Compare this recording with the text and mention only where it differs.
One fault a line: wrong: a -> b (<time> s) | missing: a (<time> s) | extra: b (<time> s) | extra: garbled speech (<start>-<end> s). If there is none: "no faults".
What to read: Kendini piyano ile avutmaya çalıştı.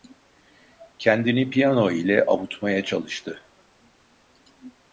no faults